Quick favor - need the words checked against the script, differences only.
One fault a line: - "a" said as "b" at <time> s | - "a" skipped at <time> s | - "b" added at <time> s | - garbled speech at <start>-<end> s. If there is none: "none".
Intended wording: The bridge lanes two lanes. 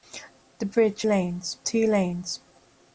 none